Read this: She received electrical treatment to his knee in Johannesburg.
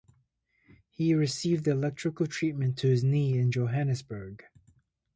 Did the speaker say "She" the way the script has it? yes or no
no